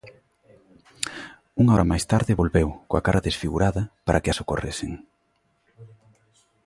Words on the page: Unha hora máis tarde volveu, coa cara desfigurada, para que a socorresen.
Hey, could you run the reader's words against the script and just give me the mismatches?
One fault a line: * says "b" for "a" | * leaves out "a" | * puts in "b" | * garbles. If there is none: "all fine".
all fine